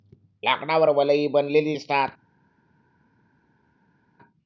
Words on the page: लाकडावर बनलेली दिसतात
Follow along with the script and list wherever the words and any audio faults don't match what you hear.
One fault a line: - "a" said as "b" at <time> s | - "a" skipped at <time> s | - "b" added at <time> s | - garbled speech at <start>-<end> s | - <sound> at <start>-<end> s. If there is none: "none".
- "वलये" added at 0.9 s